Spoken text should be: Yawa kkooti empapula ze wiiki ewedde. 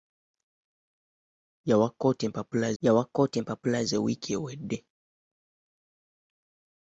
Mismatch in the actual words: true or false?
true